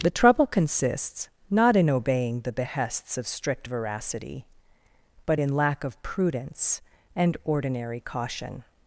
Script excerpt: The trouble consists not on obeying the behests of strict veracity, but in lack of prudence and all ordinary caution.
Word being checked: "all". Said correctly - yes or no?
no